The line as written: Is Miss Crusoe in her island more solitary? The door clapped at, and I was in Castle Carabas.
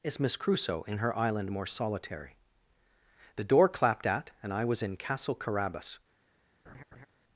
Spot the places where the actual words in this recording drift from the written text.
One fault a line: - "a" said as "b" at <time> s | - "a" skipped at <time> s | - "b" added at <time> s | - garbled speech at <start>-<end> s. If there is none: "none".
none